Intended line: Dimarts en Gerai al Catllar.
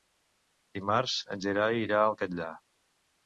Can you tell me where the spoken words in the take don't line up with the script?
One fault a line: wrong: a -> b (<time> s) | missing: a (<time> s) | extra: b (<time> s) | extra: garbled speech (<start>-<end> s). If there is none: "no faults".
extra: irà (1.8 s)